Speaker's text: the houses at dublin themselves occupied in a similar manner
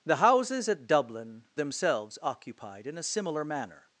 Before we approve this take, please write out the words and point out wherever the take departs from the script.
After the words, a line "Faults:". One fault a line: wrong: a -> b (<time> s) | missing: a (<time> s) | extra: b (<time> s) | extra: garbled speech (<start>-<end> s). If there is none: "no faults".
the houses at dublin themselves occupied in a similar manner
Faults:
no faults